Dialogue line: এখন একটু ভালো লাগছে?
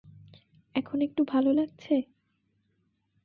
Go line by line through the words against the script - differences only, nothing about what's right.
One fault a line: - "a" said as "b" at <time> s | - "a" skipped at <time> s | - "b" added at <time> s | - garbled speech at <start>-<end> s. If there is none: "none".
none